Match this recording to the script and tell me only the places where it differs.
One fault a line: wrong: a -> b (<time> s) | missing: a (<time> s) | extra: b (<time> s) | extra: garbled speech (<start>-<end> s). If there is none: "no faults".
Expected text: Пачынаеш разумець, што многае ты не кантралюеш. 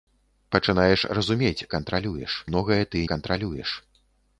wrong: што -> кантралюеш (1.7 s)
missing: не (3.0 s)